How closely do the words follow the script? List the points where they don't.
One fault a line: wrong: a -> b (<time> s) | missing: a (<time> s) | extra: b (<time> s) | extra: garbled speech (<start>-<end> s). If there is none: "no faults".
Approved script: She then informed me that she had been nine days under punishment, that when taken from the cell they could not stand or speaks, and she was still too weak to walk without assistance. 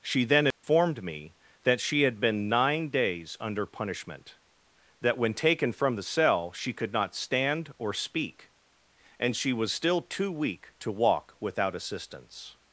wrong: they -> she (6.5 s)
wrong: speaks -> speak (7.9 s)